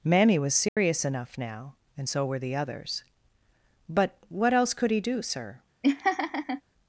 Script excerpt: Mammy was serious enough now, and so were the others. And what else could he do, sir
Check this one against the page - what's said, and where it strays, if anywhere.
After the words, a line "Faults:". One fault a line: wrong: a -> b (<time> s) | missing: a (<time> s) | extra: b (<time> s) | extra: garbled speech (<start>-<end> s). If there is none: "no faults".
Mammy was serious enough now, and so were the others. But what else could he do, sir
Faults:
wrong: And -> But (3.9 s)